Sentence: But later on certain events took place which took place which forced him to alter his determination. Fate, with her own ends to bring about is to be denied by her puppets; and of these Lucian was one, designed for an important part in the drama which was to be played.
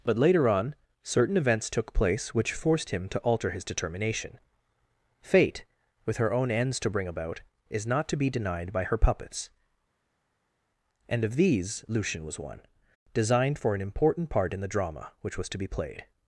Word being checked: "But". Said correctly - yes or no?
yes